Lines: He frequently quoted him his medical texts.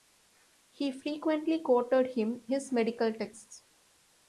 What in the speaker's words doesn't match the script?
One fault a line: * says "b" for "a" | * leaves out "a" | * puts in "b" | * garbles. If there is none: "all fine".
all fine